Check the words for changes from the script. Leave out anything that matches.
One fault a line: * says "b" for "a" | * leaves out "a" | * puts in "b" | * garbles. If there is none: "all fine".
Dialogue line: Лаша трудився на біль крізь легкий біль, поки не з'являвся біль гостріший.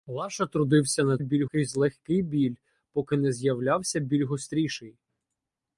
all fine